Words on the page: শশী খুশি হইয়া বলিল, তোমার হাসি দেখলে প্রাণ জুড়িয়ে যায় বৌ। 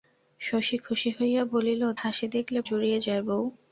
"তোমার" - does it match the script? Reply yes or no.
no